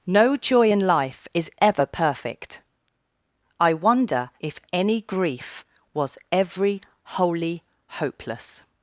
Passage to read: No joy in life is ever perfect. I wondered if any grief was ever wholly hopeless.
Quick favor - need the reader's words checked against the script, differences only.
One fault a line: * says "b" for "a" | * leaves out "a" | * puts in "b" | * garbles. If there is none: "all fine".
* says "wonder" for "wondered"
* says "every" for "ever"